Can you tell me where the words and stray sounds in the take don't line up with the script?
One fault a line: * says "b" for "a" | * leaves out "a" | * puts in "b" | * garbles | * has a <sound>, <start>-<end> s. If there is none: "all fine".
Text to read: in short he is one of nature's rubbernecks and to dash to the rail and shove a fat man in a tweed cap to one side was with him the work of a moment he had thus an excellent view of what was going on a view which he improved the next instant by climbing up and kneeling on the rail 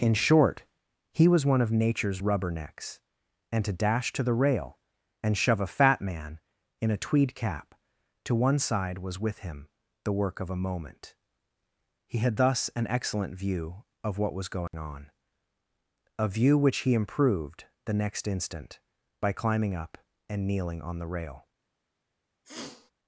* says "was" for "is"
* has a dropout, 14.7-14.7 s
* has a sniff, 22.4-22.9 s